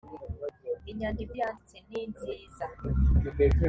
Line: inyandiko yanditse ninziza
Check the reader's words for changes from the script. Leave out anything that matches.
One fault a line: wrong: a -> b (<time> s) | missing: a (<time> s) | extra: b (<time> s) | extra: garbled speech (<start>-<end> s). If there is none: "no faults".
no faults